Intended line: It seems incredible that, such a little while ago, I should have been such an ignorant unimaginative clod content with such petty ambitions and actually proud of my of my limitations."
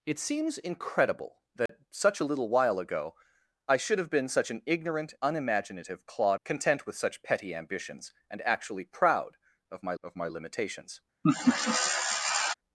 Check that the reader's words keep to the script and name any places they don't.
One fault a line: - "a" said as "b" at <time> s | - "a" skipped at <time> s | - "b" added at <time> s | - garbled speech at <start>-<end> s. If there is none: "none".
none